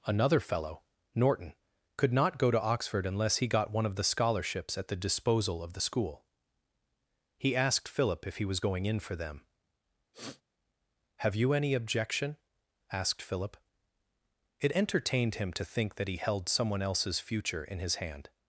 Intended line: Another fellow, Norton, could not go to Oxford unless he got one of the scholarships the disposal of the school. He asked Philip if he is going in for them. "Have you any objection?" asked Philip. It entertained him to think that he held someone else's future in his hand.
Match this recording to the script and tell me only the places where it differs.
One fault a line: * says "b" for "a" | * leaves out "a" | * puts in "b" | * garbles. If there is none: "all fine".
* puts in "at"
* says "was" for "is"